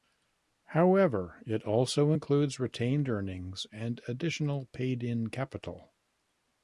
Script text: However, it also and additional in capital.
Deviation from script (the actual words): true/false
true